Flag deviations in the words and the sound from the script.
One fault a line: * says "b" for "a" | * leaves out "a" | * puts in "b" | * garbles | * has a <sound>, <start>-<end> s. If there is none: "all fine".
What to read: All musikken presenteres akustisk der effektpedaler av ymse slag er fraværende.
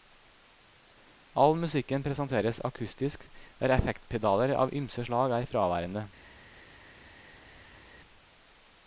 all fine